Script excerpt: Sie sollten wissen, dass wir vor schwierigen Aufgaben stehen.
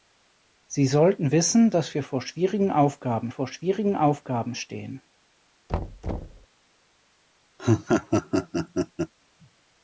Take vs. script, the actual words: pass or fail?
fail